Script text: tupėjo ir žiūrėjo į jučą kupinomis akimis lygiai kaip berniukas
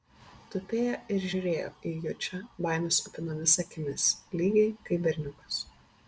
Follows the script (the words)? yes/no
no